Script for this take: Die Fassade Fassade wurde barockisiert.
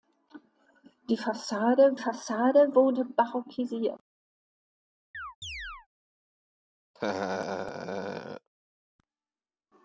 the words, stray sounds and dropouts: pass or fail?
fail